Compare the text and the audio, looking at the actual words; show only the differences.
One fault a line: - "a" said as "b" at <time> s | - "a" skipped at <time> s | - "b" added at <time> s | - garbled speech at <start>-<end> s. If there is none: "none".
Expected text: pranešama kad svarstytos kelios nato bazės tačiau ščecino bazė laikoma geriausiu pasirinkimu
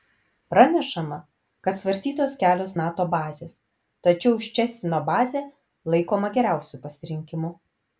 none